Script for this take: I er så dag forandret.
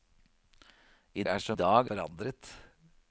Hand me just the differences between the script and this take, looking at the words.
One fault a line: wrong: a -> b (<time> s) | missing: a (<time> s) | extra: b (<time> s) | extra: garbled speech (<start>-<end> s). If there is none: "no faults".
no faults